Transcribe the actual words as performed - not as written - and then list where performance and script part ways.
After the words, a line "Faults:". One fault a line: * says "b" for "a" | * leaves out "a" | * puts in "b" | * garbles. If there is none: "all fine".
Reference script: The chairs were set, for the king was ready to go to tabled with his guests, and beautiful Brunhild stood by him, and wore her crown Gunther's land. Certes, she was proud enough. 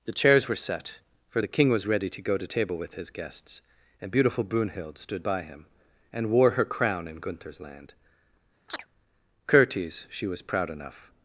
The chairs were set, for the king was ready to go to table with his guests, and beautiful Brunhild stood by him, and wore her crown in Gunther's land. Certes, she was proud enough.
Faults:
* says "table" for "tabled"
* puts in "in"